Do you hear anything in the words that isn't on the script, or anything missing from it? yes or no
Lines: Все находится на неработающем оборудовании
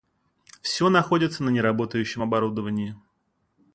no